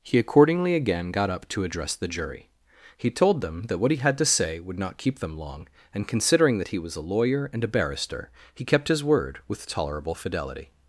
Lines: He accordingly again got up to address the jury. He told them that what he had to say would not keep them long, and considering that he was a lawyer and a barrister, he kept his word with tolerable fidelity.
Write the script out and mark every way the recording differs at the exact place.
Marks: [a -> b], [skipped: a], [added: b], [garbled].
He accordingly again got up to address the jury. He told them that what he had to say would not keep them long, and considering that he was a lawyer and a barrister, he kept his word with tolerable fidelity.